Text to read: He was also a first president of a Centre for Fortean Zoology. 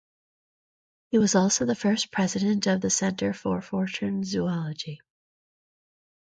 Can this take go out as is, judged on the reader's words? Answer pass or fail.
fail